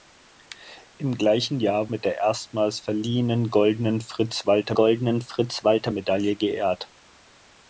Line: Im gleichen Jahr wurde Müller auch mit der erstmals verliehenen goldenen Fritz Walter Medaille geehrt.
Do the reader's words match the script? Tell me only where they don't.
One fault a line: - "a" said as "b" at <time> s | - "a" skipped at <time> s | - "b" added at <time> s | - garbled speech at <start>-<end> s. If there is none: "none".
- "wurde Müller auch" skipped at 1.9 s
- "goldenen Fritz Walter" added at 4.7 s